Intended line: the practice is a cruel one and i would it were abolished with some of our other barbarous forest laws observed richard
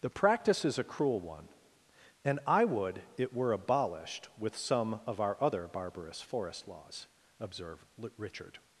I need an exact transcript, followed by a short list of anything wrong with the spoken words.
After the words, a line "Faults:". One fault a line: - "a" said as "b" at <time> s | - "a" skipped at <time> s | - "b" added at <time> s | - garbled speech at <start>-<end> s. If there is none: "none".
the practice is a cruel one and i would it were abolished with some of our other barbarous forest laws observed richard
Faults:
none